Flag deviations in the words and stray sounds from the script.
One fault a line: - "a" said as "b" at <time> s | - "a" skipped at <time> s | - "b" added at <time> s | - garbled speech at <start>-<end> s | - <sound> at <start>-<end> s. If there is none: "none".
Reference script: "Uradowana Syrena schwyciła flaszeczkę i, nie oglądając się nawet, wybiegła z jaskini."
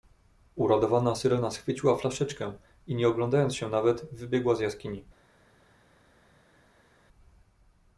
none